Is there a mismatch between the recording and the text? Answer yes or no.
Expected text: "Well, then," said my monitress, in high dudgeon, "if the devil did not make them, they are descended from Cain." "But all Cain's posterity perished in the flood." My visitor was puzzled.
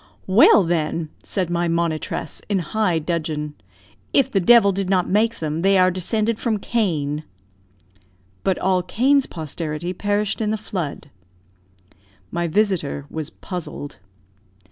no